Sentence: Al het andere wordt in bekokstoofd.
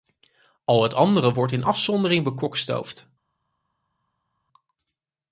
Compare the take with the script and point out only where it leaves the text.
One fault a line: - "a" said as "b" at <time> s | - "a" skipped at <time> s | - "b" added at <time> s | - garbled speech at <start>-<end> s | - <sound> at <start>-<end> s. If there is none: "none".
- "afzondering" added at 1.6 s